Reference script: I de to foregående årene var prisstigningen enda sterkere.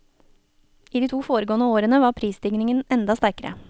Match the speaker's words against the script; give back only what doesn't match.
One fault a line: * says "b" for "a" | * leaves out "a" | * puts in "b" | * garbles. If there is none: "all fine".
all fine